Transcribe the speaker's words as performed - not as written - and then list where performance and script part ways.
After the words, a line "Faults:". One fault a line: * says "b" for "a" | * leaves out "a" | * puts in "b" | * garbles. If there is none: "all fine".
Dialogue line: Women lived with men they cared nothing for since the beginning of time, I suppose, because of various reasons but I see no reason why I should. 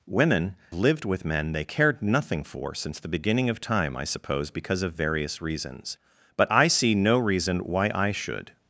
Women lived with men they cared nothing for since the beginning of time, I suppose, because of various reasons but I see no reason why I should.
Faults:
all fine